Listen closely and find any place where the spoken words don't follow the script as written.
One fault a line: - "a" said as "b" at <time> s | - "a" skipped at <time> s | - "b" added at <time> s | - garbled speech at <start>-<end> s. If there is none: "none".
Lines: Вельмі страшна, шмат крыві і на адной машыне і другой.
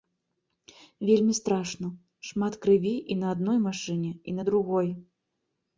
- "на" added at 4.4 s